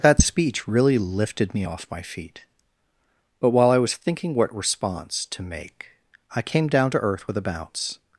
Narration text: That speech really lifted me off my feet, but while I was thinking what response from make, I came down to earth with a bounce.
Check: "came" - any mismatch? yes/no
no